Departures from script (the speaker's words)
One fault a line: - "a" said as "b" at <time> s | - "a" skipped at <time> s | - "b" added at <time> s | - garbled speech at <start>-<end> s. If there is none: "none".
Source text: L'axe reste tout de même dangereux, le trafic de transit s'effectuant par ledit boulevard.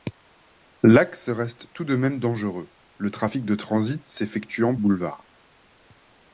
- "par ledit" skipped at 4.8 s